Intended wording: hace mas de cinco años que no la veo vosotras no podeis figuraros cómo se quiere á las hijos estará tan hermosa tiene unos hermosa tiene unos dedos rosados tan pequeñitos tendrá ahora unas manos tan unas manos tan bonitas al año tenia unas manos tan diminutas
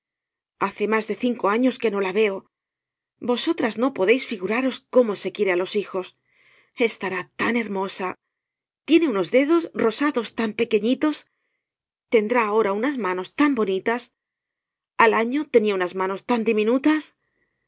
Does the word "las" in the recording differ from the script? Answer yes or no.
yes